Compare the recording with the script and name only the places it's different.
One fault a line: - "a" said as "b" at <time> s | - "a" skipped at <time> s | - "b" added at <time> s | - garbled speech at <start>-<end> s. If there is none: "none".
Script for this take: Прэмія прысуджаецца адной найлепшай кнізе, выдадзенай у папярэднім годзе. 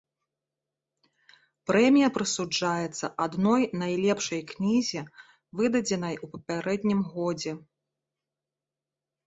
none